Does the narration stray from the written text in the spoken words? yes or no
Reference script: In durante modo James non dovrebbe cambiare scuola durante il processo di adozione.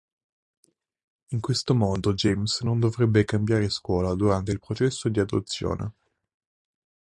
yes